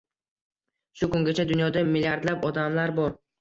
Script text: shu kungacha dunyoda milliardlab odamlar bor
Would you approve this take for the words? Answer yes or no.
yes